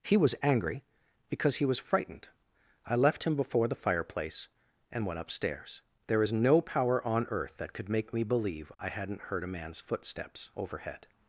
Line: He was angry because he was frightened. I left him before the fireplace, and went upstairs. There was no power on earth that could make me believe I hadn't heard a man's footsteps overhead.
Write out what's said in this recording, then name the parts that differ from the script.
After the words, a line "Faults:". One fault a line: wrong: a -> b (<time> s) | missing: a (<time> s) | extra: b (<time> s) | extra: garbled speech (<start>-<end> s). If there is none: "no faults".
He was angry because he was frightened. I left him before the fireplace, and went upstairs. There is no power on earth that could make me believe I hadn't heard a man's footsteps overhead.
Faults:
wrong: was -> is (6.2 s)